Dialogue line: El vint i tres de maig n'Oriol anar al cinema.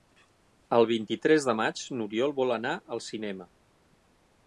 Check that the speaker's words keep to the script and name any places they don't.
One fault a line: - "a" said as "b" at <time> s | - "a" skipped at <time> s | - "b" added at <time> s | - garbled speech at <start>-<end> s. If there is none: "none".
- "vol" added at 2.4 s